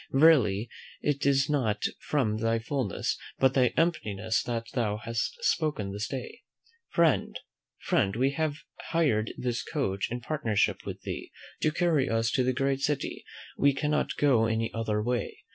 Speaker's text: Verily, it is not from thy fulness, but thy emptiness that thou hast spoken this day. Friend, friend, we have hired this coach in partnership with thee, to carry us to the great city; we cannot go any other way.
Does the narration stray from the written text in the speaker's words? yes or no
no